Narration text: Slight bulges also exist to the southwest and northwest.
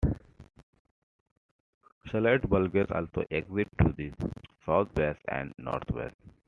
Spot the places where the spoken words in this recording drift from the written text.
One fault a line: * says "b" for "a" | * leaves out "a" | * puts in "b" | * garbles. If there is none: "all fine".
all fine